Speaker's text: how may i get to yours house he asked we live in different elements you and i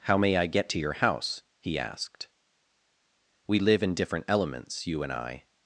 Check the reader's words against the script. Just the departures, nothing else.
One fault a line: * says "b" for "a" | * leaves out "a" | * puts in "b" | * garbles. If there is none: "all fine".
* says "your" for "yours"